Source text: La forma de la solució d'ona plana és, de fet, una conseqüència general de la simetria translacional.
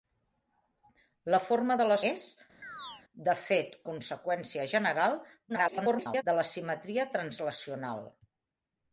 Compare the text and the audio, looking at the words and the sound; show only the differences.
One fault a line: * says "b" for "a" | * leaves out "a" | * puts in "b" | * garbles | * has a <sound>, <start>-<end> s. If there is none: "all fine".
* leaves out "solució d'ona plana"
* has a chirp, 2.6-3.0 s
* leaves out "una"
* garbles